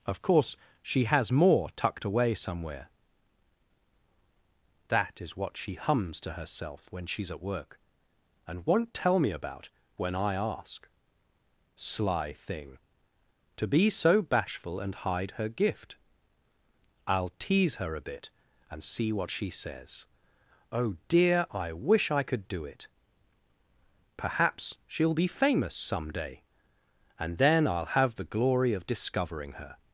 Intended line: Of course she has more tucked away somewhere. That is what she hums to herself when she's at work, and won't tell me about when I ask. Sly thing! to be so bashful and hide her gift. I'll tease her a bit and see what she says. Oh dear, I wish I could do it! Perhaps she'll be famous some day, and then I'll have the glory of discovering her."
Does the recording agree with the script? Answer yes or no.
yes